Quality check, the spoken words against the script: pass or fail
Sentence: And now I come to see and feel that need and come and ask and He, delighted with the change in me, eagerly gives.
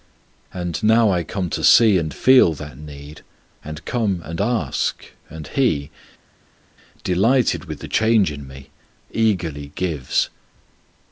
pass